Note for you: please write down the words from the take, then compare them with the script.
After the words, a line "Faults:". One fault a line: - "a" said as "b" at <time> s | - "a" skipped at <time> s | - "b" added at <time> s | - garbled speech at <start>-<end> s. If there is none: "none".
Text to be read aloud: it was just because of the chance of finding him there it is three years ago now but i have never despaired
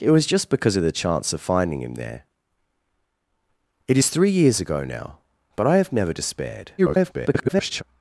it was just because of the chance of finding him there it is three years ago now but i have never despaired [garbled]
Faults:
- garbled speech at 6.8-7.8 s